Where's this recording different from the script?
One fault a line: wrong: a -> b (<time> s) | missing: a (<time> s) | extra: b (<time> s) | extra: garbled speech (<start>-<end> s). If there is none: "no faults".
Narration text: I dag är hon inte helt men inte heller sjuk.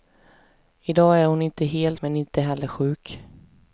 no faults